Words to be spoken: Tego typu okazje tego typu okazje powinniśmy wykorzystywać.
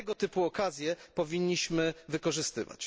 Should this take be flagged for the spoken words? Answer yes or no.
yes